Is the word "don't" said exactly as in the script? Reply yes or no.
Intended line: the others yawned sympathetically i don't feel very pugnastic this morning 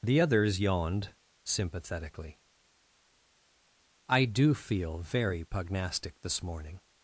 no